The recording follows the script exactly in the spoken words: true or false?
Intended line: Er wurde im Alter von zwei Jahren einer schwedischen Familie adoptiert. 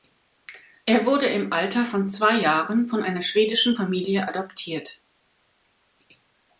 false